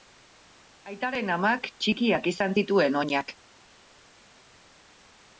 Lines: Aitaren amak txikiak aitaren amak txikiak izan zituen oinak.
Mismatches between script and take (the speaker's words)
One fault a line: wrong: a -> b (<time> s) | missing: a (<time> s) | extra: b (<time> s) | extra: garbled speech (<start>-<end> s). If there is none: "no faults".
missing: aitaren amak txikiak (2.3 s)